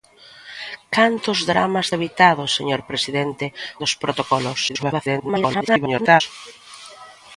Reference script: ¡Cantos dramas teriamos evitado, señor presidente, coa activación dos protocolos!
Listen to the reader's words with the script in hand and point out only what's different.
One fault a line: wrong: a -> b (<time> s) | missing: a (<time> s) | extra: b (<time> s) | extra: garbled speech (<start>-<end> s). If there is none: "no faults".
missing: teriamos (1.9 s)
missing: coa activación (3.5 s)
extra: garbled speech (4.7-6.2 s)